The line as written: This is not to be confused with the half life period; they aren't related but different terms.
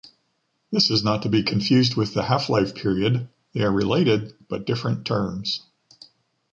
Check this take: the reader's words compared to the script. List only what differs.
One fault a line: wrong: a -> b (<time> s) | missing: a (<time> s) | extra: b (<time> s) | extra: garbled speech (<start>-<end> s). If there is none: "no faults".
wrong: aren't -> are (3.6 s)